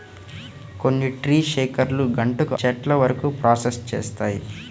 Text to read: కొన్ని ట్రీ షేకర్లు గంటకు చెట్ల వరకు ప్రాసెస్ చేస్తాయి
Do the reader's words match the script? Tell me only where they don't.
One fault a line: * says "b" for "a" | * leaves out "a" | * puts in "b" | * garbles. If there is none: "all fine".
all fine